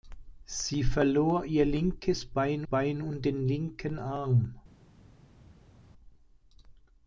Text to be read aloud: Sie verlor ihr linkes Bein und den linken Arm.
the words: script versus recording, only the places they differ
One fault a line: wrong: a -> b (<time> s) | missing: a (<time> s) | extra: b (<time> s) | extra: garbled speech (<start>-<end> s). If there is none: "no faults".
extra: Bein (2.6 s)